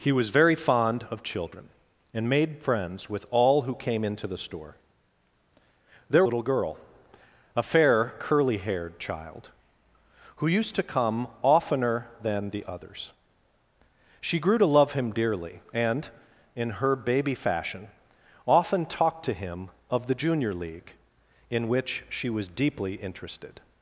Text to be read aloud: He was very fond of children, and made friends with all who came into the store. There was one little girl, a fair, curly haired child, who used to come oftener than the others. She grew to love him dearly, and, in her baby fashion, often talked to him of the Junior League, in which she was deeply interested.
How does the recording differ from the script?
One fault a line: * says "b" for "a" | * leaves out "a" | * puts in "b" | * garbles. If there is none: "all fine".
* leaves out "was one"